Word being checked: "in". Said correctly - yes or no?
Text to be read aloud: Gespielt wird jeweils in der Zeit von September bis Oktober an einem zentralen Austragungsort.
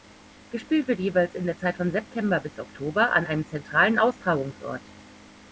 yes